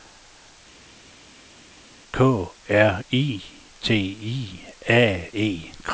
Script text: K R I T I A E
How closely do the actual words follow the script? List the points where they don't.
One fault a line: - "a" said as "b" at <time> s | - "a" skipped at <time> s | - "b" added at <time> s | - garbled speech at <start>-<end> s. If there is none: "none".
none